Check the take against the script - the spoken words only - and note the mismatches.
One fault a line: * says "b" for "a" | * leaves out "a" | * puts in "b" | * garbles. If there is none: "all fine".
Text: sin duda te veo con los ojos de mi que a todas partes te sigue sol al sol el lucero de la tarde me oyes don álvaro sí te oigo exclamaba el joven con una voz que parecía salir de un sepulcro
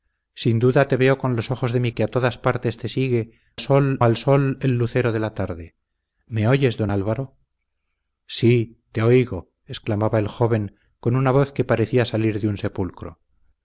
all fine